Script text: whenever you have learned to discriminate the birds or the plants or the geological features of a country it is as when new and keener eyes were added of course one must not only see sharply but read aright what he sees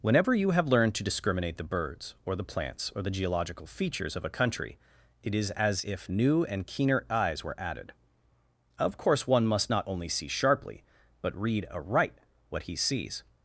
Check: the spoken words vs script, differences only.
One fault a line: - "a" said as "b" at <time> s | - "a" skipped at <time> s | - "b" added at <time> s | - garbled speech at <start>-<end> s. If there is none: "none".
- "when" said as "if" at 5.8 s